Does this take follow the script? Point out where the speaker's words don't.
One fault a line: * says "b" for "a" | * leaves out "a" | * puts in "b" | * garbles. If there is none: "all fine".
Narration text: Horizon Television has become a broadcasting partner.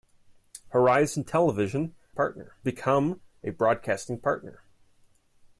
* says "partner" for "has"